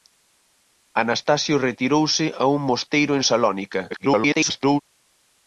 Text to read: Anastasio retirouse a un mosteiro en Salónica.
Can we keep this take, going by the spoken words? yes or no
no